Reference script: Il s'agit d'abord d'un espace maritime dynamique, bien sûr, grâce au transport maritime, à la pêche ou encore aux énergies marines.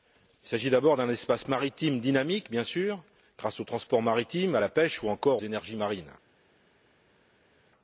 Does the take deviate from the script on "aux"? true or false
true